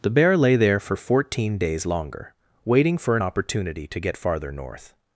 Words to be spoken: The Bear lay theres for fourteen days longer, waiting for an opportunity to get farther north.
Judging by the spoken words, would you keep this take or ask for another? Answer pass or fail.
fail